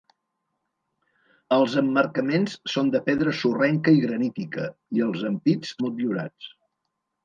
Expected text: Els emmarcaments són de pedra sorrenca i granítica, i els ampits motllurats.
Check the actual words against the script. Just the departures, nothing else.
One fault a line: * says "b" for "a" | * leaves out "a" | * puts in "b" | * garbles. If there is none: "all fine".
all fine